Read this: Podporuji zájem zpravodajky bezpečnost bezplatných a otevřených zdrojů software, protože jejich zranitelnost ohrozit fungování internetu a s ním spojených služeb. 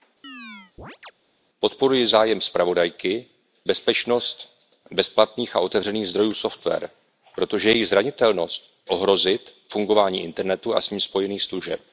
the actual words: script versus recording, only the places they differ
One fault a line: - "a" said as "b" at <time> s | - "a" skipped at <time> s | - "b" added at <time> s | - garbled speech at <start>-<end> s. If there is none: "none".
none